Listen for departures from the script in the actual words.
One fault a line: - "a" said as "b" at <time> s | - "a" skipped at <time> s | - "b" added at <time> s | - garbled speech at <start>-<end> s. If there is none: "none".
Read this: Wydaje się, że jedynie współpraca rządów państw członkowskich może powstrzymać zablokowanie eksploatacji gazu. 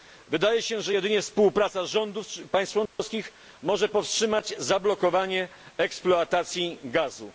none